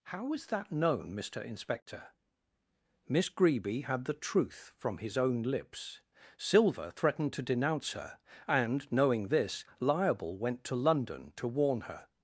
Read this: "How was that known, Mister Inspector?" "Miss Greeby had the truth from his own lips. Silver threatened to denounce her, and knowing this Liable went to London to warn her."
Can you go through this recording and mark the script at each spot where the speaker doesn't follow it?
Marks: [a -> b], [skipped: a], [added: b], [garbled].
"How was that known, Mister Inspector?" "Miss Greeby had the truth from his own lips. Silver threatened to denounce her, and knowing this Liable went to London to warn her."